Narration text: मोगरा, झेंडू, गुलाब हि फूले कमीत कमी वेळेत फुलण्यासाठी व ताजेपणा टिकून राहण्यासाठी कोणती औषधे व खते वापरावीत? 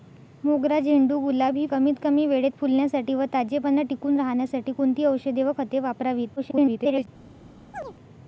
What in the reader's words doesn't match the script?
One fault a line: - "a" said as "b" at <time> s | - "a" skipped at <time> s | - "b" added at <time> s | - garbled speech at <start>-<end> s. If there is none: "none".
- "फूले" skipped at 1.6 s
- garbled speech at 6.4-7.1 s